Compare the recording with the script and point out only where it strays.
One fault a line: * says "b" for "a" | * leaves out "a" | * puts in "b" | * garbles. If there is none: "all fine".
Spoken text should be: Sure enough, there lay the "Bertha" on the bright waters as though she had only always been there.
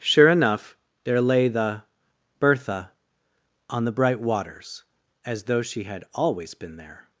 * leaves out "only"